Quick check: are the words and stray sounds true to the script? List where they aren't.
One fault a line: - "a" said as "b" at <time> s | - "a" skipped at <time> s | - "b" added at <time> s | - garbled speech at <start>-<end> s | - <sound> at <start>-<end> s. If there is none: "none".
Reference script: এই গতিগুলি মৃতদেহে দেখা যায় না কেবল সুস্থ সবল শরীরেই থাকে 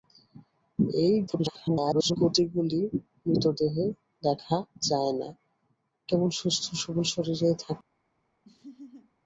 - garbled speech at 1.3-2.2 s
- laugh at 8.4-9.1 s